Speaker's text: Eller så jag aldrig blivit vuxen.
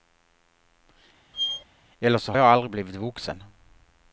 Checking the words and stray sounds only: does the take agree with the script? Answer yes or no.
no